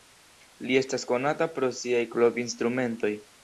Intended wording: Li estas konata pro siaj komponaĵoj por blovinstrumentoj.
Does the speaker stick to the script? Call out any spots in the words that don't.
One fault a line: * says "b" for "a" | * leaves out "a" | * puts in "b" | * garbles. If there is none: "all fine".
* leaves out "komponaĵoj por"